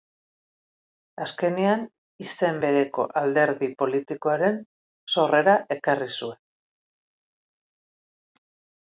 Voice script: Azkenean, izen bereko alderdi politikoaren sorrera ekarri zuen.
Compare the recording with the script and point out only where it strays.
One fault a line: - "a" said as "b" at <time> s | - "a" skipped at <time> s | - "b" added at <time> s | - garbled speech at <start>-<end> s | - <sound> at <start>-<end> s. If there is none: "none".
none